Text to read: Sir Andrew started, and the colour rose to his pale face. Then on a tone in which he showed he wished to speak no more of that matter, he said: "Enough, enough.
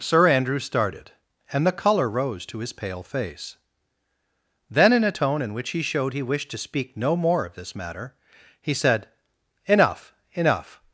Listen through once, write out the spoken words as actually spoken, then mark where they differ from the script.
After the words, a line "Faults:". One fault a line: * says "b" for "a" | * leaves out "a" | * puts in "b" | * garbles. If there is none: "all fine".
Sir Andrew started, and the colour rose to his pale face. Then in a tone in which he showed he wished to speak no more of this matter, he said: "Enough, enough.
Faults:
* says "in" for "on"
* says "this" for "that"